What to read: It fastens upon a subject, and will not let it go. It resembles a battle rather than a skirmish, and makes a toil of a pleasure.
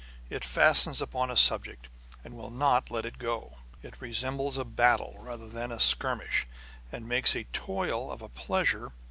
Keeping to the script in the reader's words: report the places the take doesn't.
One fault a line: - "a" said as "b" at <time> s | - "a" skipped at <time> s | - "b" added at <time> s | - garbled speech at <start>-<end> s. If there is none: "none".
none